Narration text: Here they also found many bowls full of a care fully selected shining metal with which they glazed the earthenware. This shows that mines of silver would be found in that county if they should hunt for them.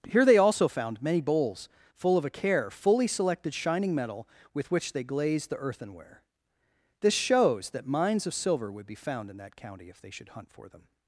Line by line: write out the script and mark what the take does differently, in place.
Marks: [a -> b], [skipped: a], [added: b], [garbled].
Here they also found many bowls full of a care fully selected shining metal with which they glazed the earthenware. This shows that mines of silver would be found in that county if they should hunt for them.